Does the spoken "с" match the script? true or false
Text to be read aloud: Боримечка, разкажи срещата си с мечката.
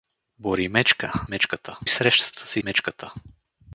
false